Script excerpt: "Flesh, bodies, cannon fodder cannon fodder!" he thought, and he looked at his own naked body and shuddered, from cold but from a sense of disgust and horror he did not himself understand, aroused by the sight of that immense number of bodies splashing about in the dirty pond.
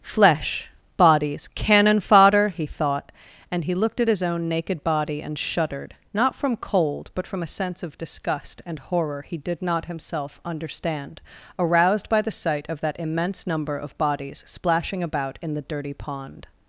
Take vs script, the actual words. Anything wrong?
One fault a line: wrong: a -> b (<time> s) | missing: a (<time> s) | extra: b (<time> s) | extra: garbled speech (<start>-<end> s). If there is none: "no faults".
missing: cannon fodder (2.5 s)
extra: not (6.1 s)